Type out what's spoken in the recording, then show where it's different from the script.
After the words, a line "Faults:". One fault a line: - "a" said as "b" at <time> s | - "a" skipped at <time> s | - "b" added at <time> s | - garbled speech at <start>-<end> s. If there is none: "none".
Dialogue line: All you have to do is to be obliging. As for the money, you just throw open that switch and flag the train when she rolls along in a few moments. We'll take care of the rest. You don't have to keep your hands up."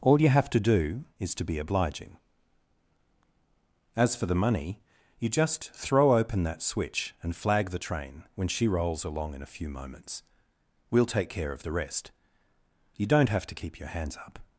All you have to do is to be obliging. As for the money, you just throw open that switch and flag the train when she rolls along in a few moments. We'll take care of the rest. You don't have to keep your hands up."
Faults:
none